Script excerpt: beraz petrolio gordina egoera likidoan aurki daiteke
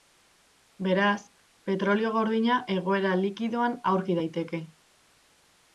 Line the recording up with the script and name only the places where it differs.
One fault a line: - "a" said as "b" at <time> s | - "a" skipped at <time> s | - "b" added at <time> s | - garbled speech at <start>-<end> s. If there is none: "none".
none